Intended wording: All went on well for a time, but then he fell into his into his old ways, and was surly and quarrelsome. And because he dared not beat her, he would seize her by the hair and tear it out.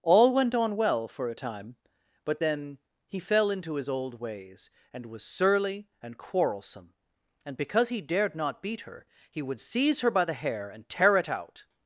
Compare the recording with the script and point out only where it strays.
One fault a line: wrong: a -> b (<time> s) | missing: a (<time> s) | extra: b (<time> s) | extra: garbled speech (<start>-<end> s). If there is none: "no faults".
missing: into his (3.9 s)